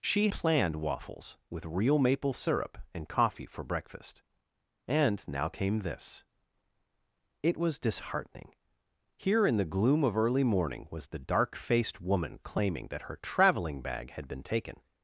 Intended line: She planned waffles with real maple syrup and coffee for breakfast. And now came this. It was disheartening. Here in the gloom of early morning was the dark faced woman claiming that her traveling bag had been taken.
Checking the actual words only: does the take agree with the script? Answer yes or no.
yes